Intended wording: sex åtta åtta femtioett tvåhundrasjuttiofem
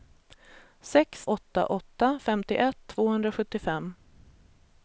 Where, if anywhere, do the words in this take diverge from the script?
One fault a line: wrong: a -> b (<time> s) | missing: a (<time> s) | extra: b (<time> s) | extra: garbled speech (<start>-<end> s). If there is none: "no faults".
no faults